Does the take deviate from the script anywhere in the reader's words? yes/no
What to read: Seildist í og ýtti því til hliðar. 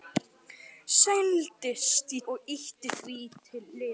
no